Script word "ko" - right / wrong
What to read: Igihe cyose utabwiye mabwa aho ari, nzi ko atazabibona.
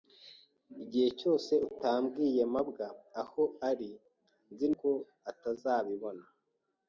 right